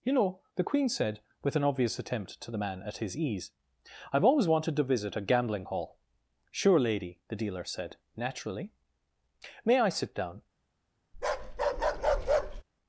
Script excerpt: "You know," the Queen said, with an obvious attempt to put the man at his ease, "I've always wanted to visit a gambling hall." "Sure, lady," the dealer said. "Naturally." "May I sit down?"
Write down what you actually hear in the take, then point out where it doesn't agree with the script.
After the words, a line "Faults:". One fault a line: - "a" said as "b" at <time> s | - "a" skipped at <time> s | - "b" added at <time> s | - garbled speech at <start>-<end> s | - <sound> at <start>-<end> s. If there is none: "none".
"You know," the Queen said, with an obvious attempt to the man at his ease, "I've always wanted to visit a gambling hall." "Sure, lady," the dealer said. "Naturally." "May I sit down?"
Faults:
- "put" skipped at 2.5 s
- bark at 11.1-12.6 s